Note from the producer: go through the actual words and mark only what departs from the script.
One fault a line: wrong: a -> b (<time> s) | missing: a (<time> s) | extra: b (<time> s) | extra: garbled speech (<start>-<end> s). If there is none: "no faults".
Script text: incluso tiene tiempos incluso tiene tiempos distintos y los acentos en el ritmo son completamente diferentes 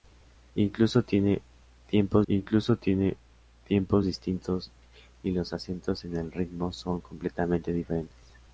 no faults